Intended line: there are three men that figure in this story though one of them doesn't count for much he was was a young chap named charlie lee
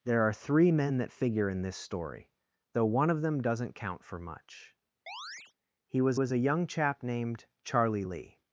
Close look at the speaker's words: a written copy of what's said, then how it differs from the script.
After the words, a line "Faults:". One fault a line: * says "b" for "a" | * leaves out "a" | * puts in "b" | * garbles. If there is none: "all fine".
there are three men that figure in this story though one of them doesn't count for much he was was a young chap named charlie lee
Faults:
all fine